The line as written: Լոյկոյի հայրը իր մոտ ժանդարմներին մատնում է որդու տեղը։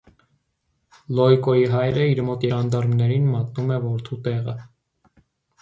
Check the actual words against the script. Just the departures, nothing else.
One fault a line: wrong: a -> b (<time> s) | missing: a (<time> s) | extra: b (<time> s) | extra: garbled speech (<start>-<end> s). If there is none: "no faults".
no faults